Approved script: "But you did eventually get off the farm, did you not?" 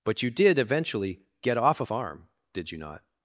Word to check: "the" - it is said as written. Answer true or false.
false